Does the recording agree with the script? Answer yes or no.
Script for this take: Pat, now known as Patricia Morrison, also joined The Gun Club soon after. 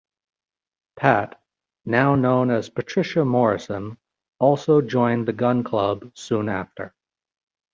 yes